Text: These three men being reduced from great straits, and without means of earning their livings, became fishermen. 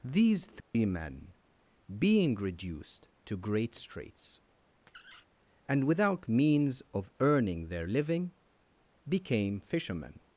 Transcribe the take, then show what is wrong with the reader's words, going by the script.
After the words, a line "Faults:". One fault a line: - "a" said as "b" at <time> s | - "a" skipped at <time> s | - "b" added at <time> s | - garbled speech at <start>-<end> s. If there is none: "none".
These three men being reduced to great straits, and without means of earning their living, became fishermen.
Faults:
- "from" said as "to" at 3.2 s
- "livings" said as "living" at 7.9 s